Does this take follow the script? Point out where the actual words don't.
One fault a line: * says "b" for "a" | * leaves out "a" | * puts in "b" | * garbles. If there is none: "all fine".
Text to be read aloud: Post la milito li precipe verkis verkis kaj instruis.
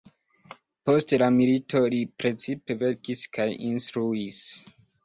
* leaves out "verkis"